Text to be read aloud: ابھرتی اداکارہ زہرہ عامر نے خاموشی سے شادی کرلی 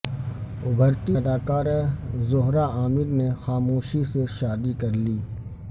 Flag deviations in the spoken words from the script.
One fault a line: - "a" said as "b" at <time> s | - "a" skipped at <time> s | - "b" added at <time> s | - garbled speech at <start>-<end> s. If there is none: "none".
none